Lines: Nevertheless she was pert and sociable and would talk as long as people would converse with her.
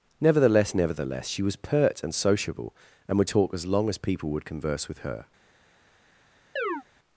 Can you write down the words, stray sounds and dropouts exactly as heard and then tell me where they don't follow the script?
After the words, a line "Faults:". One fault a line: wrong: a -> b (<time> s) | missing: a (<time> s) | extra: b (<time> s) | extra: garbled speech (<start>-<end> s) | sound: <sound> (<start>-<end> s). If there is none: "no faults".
Nevertheless nevertheless she was pert and sociable and would talk as long as people would converse with her.
Faults:
extra: nevertheless (0.7 s)
sound: chirp (6.6-6.8 s)